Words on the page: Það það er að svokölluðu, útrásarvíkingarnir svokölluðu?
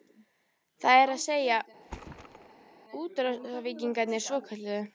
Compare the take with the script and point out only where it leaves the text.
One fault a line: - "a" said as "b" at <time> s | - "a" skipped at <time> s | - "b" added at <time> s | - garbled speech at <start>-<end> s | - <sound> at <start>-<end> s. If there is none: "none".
- "það" skipped at 1.0 s
- "svokölluðu" said as "segja" at 1.2 s
- thud at 1.8-2.8 s